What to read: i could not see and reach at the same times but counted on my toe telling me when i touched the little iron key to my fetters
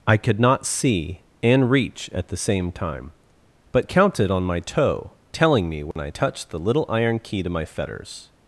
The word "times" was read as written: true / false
false